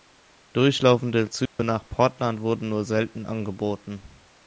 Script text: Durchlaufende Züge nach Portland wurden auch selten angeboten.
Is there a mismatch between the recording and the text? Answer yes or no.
yes